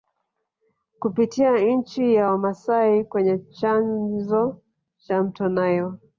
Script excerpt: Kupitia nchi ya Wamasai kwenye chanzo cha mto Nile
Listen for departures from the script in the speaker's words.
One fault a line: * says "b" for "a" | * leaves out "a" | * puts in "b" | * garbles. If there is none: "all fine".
all fine